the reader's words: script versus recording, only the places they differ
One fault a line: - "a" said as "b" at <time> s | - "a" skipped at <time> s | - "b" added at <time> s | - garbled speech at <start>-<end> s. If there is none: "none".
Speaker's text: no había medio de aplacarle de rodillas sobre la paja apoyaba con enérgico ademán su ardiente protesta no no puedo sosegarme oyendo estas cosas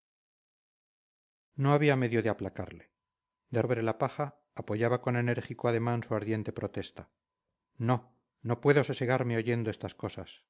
- "rodillas" skipped at 3.6 s